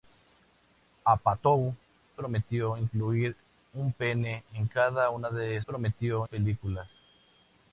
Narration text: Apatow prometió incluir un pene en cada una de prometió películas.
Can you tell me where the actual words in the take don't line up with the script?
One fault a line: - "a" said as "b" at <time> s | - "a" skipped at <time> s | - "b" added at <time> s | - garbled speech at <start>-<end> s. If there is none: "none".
none